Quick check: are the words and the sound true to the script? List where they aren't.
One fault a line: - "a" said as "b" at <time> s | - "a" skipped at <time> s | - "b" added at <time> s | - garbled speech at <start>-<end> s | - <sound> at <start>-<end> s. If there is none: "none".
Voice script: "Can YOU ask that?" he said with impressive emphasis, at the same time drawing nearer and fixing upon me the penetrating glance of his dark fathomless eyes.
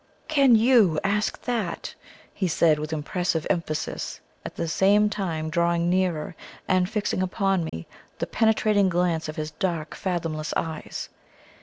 - dropout at 7.7-7.7 s